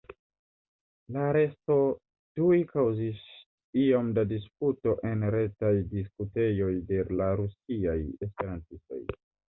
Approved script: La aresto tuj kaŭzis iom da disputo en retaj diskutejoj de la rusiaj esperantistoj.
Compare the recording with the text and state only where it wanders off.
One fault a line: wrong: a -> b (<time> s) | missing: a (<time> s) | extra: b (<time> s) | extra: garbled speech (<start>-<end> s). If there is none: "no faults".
no faults